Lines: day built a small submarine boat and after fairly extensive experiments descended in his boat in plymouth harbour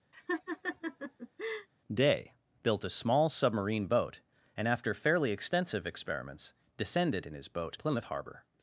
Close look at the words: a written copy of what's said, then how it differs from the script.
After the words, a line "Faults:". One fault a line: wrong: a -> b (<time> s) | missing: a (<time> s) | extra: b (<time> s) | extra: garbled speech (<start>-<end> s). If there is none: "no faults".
day built a small submarine boat and after fairly extensive experiments descended in his boat plymouth harbour
Faults:
missing: in (7.8 s)